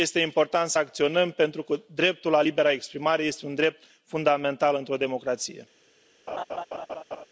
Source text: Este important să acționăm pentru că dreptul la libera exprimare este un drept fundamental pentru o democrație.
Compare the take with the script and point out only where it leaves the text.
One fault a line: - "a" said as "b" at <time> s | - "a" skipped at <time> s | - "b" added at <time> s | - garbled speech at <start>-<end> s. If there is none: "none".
- "pentru" said as "într" at 4.7 s